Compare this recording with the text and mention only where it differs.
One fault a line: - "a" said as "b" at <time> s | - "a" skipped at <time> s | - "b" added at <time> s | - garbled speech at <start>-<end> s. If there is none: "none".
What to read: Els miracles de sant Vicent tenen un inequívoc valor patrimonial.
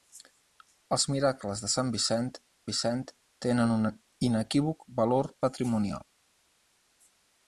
- "Vicent" added at 2.7 s